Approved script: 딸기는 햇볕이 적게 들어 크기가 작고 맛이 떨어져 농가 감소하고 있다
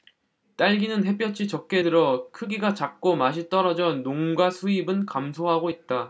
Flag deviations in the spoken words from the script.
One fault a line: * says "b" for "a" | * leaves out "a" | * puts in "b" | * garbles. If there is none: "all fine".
* puts in "수입은"